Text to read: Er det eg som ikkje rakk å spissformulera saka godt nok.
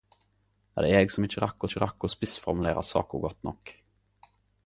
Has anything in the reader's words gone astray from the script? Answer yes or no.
yes